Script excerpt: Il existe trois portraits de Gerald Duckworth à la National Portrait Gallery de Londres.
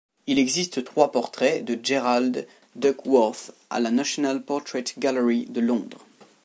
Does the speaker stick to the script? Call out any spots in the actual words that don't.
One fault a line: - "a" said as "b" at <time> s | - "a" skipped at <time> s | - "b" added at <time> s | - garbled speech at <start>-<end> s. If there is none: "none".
none